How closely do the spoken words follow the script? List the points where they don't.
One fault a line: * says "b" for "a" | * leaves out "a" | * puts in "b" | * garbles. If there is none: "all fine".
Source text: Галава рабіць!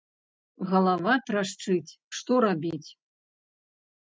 * puts in "трашчыць што"